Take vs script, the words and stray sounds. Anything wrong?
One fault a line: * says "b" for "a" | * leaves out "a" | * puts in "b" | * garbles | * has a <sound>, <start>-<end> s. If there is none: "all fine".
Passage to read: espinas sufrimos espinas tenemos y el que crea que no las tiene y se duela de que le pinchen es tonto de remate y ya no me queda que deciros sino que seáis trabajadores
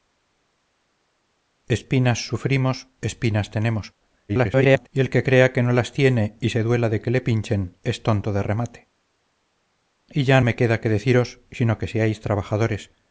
* garbles
* leaves out "no"